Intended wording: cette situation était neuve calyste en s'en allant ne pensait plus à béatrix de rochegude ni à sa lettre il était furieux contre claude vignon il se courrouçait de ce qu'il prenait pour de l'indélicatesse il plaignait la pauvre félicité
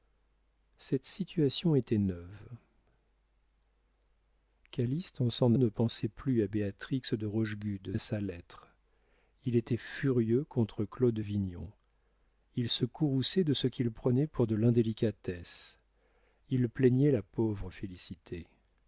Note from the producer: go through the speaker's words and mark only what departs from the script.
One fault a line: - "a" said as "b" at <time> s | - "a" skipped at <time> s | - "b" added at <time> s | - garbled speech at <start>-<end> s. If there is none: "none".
- "allant" skipped at 5.5 s
- "ni" skipped at 7.9 s